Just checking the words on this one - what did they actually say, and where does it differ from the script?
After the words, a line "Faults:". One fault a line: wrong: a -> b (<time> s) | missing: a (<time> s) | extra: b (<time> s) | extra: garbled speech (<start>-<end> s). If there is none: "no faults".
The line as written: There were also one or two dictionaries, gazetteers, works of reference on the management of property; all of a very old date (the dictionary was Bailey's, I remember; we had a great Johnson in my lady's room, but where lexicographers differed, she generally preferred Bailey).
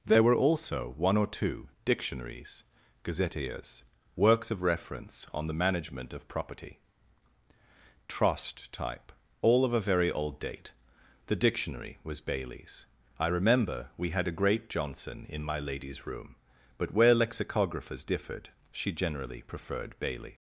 There were also one or two dictionaries, gazetteers, works of reference on the management of property; trust type all of a very old date (the dictionary was Bailey's, I remember; we had a great Johnson in my lady's room, but where lexicographers differed, she generally preferred Bailey).
Faults:
extra: trust type (8.1 s)